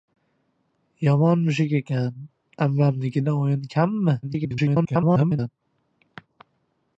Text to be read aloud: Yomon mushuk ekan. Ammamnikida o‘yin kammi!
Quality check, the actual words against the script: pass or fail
fail